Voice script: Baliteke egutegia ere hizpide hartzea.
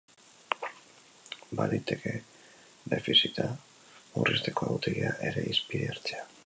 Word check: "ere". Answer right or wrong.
right